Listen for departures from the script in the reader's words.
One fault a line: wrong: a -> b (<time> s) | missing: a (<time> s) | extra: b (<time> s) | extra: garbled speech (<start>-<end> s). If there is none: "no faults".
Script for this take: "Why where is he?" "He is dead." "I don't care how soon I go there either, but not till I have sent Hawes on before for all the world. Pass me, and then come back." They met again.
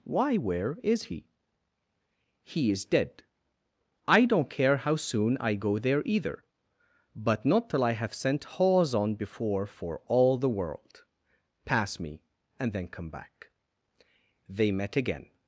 no faults